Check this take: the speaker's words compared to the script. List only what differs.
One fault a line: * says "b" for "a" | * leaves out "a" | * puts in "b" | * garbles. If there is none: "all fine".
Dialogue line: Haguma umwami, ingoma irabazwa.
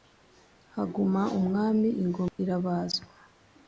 all fine